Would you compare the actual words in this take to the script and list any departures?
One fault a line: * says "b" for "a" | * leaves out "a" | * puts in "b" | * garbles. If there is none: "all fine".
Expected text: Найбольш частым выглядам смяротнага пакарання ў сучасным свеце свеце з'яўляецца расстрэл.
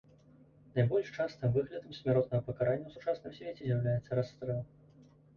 * leaves out "свеце"